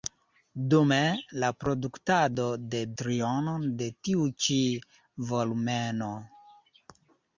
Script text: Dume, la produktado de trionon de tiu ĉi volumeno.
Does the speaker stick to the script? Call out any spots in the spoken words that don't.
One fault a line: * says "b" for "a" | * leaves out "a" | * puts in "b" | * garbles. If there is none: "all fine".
all fine